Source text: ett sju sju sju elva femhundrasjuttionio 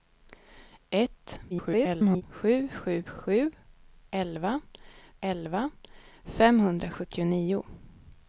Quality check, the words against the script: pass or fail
fail